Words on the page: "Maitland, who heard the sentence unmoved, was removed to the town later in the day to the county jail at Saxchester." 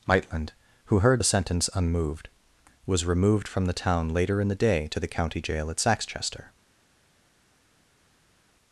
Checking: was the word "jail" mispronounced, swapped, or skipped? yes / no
no